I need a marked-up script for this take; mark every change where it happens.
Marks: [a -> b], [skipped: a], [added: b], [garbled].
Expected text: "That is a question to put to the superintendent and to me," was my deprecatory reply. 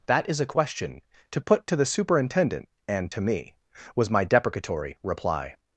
"That is a question to put to the superintendent and to me," was my deprecatory reply.